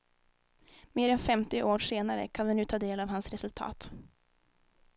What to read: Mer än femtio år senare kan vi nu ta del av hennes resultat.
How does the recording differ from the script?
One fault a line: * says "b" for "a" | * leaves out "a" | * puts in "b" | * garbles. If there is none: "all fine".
* says "hans" for "hennes"